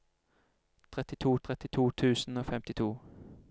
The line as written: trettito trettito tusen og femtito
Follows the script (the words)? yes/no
yes